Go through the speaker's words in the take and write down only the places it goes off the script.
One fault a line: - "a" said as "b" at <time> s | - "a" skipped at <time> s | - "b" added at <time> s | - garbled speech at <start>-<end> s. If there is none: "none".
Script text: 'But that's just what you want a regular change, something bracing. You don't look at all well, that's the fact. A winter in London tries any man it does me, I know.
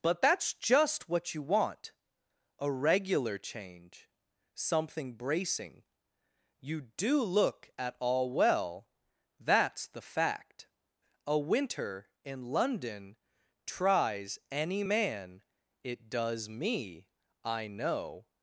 - "don't" said as "do" at 6.8 s